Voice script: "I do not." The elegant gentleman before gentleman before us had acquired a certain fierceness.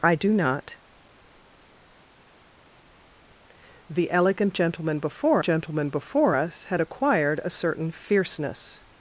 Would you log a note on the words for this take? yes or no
no